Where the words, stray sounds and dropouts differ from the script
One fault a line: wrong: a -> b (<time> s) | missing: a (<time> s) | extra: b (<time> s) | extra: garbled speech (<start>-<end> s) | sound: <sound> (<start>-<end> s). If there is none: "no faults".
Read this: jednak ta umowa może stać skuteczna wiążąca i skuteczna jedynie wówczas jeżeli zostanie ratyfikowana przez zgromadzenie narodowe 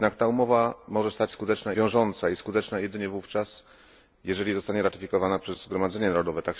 no faults